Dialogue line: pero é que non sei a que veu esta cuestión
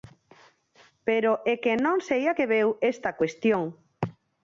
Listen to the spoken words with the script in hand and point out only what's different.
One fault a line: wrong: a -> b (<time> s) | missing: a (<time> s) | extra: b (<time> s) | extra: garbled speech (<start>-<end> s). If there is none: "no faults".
no faults